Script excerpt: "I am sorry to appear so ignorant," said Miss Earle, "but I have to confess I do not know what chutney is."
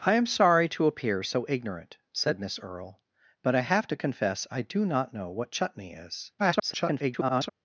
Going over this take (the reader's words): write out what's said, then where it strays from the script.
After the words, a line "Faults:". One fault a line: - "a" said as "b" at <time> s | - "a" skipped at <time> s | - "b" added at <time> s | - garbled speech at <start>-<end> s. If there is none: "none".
"I am sorry to appear so ignorant," said Miss Earle, "but I have to confess I do not know what chutney is." [garbled]
Faults:
- garbled speech at 6.4-7.5 s